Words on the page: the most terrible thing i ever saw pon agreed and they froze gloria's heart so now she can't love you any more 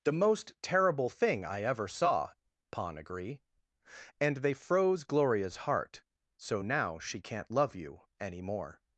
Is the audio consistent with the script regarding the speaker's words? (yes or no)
no